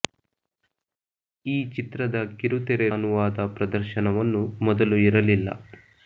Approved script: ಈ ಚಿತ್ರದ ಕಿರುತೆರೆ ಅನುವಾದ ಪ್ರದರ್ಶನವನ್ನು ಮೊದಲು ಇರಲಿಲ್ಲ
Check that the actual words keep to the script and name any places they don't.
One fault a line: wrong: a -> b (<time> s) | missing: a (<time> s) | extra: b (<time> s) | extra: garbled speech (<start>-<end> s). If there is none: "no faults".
no faults